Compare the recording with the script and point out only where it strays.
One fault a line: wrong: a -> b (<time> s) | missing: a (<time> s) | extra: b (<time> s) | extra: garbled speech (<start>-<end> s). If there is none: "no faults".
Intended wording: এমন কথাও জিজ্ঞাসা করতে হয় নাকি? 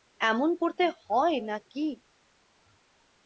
missing: কথাও জিজ্ঞাসা (0.5 s)